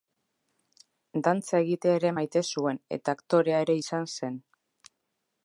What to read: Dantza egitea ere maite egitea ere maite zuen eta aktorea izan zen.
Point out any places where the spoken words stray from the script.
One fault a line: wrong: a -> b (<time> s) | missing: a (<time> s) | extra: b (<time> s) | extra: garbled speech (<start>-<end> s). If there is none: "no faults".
missing: egitea ere maite (2.4 s)
extra: ere (3.7 s)